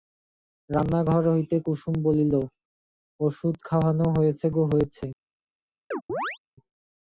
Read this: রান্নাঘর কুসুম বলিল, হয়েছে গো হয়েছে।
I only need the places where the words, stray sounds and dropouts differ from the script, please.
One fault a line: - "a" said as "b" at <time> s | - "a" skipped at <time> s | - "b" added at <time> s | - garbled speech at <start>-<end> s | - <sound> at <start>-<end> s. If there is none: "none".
- "হইতে" added at 1.3 s
- "ওষুধ খাওয়ানো" added at 3.2 s
- chirp at 5.9-6.4 s